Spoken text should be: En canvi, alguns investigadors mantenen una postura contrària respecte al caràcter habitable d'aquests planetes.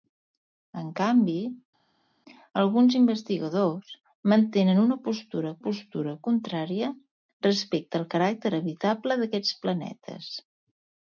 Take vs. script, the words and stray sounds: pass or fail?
fail